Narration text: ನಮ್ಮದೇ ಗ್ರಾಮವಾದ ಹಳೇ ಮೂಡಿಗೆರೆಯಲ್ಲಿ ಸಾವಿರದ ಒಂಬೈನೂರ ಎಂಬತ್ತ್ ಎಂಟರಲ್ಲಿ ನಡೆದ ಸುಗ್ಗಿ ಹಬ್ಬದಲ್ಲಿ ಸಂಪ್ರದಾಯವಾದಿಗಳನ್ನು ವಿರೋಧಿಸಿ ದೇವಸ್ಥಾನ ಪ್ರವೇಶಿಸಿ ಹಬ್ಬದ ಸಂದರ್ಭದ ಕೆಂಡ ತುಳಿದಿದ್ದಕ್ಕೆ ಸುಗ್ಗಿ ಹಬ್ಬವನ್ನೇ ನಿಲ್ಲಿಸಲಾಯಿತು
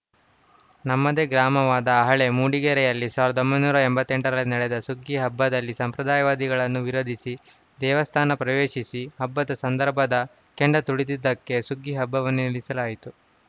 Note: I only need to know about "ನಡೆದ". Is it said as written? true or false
true